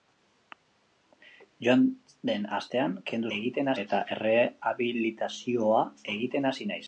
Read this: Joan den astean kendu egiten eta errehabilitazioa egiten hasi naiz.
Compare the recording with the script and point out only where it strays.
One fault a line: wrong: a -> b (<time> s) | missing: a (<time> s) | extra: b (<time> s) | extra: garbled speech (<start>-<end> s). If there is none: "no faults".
no faults